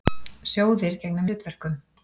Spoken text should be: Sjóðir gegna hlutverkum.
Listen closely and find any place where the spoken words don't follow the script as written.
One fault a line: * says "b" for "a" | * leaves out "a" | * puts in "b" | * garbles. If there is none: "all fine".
all fine